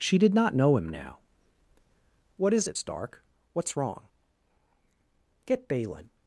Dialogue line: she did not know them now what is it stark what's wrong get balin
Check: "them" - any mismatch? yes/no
yes